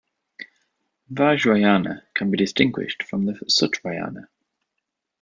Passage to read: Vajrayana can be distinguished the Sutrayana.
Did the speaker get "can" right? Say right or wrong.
right